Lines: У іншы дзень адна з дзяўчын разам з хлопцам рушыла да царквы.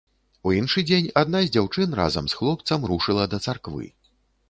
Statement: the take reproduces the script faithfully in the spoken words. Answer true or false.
true